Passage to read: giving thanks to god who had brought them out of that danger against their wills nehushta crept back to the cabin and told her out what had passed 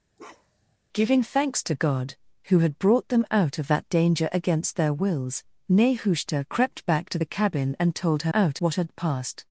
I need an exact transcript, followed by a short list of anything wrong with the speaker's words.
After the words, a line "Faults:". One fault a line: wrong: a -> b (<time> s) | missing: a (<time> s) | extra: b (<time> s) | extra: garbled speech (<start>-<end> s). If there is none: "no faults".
giving thanks to god who had brought them out of that danger against their wills nehushta crept back to the cabin and told her out what had passed
Faults:
no faults